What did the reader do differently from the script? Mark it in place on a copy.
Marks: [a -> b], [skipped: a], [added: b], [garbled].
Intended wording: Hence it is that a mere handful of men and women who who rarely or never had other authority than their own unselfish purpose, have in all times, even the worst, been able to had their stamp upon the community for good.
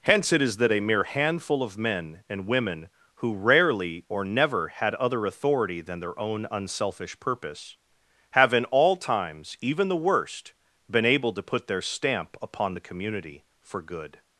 Hence it is that a mere handful of men and women who [skipped: who] rarely or never had other authority than their own unselfish purpose, have in all times, even the worst, been able to [had -> put] their stamp upon the community for good.